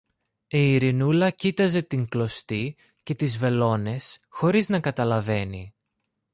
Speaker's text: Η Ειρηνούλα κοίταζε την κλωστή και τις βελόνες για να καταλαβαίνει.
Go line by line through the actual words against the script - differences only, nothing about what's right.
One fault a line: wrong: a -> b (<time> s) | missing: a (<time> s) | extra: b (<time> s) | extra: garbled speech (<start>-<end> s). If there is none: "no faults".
wrong: για -> χωρίς (4.3 s)